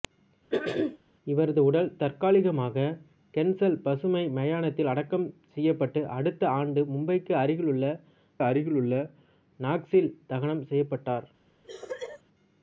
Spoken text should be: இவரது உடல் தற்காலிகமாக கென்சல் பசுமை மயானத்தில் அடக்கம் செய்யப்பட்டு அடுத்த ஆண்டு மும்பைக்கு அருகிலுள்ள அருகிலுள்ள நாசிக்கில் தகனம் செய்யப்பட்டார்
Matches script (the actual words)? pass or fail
pass